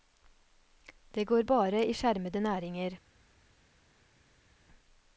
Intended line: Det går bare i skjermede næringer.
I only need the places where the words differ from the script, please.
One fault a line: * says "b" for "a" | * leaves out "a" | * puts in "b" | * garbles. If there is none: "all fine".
all fine